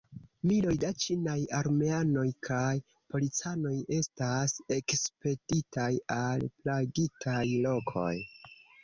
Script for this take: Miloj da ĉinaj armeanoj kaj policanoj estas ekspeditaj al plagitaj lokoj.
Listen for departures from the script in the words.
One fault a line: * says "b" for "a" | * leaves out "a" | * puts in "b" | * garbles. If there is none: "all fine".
all fine